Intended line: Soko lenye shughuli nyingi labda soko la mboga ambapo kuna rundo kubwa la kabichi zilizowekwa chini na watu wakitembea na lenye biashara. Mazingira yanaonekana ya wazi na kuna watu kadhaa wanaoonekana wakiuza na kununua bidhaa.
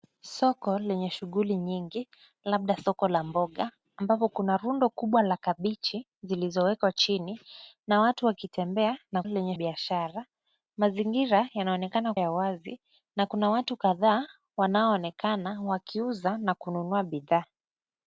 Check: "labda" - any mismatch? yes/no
no